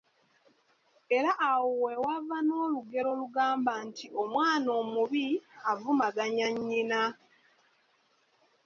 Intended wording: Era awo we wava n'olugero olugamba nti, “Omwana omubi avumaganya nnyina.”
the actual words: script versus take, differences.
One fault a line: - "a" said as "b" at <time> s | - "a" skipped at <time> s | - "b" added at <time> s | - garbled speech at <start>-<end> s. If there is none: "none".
none